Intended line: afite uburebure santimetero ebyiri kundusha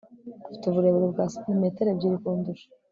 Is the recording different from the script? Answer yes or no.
yes